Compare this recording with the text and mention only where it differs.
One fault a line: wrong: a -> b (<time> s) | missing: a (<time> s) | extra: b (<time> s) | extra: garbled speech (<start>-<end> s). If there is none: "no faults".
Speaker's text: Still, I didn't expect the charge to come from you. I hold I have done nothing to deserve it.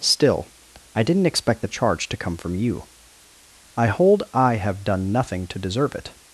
no faults